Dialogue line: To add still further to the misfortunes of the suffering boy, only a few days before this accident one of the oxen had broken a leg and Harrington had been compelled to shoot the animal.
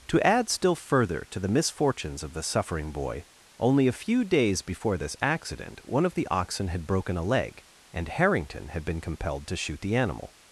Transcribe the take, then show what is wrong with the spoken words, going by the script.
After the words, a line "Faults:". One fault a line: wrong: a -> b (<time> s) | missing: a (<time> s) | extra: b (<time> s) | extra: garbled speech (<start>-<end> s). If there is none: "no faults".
To add still further to the misfortunes of the suffering boy, only a few days before this accident one of the oxen had broken a leg and Harrington had been compelled to shoot the animal.
Faults:
no faults